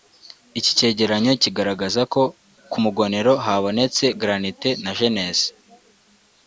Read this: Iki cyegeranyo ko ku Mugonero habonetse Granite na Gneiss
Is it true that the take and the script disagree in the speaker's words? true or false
true